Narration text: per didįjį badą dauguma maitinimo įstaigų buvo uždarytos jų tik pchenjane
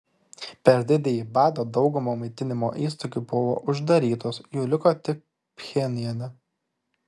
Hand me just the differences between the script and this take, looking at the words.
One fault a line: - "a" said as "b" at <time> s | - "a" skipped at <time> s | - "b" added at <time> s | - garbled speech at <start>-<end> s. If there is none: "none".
- "liko" added at 4.8 s